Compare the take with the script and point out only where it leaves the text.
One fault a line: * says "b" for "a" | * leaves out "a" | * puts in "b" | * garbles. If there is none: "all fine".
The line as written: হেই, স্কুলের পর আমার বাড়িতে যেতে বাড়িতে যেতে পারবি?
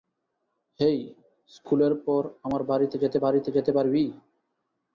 all fine